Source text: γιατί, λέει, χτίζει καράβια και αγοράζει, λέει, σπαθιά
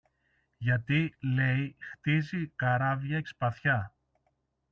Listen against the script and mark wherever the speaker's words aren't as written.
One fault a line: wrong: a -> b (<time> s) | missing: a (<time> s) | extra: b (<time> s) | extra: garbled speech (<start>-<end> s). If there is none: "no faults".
missing: και αγοράζει λέει (3.2 s)